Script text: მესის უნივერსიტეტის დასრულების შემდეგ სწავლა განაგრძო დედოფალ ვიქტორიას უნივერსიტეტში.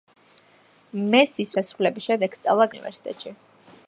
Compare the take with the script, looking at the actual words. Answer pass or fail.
fail